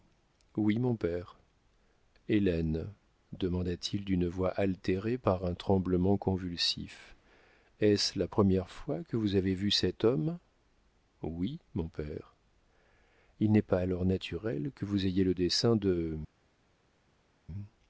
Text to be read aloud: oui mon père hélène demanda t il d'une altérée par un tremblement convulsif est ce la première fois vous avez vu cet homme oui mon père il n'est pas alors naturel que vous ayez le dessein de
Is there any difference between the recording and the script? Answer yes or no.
yes